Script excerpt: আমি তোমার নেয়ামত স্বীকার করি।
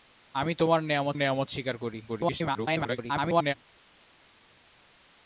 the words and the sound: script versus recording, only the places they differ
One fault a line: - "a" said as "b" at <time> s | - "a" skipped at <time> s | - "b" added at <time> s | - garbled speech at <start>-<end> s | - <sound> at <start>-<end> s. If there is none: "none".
- "নেয়ামত" added at 1.1 s
- garbled speech at 2.1-3.5 s